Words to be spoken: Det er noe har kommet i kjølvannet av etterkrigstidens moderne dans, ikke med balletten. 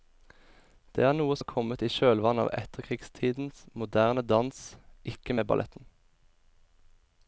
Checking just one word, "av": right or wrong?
right